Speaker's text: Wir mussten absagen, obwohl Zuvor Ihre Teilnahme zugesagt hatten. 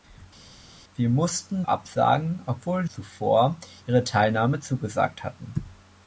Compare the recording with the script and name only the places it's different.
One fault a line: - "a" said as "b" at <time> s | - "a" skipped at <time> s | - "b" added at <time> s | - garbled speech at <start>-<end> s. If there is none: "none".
none